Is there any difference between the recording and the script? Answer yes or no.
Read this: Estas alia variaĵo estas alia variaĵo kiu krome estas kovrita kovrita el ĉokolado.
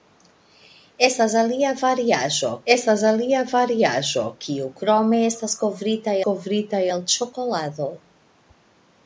no